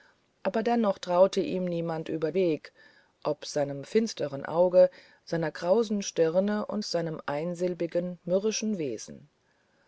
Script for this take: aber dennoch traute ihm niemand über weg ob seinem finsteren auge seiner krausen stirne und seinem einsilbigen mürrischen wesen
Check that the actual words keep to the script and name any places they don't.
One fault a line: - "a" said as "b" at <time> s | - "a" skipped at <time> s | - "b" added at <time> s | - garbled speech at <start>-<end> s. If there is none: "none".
none